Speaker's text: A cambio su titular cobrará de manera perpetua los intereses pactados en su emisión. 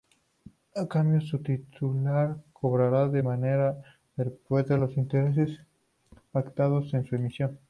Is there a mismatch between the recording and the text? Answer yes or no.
no